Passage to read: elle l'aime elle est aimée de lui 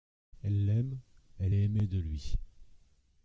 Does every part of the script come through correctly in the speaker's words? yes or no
yes